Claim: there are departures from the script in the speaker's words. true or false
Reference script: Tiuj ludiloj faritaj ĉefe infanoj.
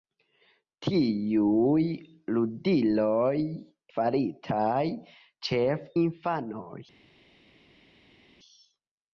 false